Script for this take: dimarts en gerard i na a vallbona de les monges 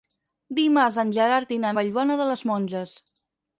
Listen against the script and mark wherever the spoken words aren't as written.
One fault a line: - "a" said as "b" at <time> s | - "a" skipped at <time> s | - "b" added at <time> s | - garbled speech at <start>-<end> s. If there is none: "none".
none